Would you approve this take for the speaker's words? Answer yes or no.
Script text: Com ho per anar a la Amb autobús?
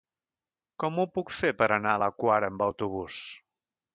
no